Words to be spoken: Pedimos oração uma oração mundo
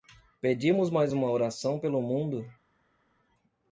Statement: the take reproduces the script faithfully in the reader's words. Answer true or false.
false